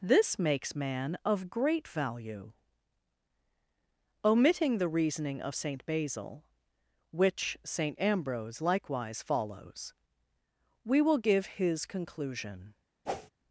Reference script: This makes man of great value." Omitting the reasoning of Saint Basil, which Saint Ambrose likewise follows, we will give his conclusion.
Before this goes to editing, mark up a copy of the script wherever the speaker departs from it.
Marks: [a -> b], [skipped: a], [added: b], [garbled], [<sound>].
This makes man of great value." Omitting the reasoning of Saint Basil, which Saint Ambrose likewise follows, we will give his conclusion. [whoosh]